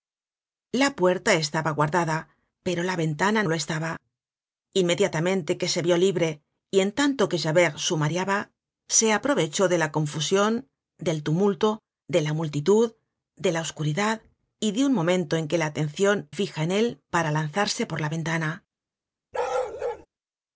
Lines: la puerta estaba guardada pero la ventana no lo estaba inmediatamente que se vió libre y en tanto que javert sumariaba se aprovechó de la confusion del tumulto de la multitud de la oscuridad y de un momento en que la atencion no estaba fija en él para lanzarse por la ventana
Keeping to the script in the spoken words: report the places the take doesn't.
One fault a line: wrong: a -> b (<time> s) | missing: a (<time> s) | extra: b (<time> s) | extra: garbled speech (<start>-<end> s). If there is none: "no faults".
missing: no (3.4 s)
missing: no estaba (16.3 s)